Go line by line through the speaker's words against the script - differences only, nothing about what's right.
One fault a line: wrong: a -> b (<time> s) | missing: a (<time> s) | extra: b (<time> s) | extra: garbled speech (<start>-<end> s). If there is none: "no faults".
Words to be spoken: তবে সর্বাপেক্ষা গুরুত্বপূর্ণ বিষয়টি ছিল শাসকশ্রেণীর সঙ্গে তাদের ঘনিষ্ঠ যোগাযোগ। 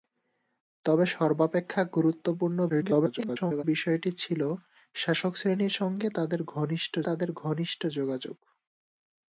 extra: garbled speech (2.7-3.6 s)
extra: তাদের ঘনিষ্ঠ (7.1 s)